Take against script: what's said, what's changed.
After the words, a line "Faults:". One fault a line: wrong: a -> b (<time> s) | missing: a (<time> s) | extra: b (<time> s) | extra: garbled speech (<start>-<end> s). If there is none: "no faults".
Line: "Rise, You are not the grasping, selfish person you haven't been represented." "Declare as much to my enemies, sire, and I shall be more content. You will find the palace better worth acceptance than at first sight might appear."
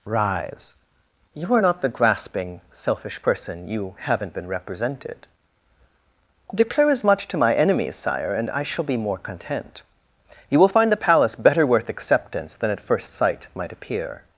"Rise, You are not the grasping, selfish person you haven't been represented." "Declare as much to my enemies, sire, and I shall be more content. You will find the palace better worth acceptance than at first sight might appear."
Faults:
no faults